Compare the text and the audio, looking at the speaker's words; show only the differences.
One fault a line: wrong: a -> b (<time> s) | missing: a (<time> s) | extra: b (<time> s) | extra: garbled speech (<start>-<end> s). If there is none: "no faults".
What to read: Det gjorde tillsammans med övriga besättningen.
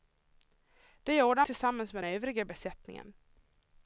no faults